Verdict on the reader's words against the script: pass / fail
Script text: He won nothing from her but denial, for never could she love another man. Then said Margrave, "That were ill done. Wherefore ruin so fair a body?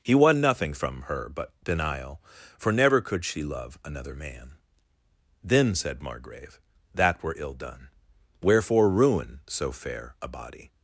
pass